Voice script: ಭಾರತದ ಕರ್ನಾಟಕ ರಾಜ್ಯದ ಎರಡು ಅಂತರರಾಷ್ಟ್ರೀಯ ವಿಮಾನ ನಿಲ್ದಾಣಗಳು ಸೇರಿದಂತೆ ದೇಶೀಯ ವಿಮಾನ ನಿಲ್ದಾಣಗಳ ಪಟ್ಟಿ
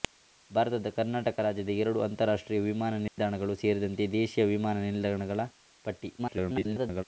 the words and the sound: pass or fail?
fail